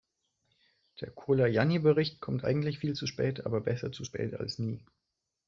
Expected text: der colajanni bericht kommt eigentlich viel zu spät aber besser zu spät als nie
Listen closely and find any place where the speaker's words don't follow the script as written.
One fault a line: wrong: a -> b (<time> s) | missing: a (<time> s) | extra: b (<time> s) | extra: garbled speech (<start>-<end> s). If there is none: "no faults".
no faults